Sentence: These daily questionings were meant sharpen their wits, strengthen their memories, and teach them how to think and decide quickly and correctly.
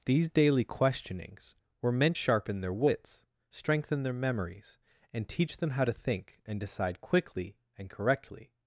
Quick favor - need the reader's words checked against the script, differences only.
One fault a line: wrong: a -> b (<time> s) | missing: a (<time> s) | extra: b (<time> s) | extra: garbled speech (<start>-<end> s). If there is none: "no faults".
no faults